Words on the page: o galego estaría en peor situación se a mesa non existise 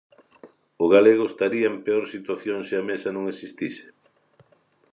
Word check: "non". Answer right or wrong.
right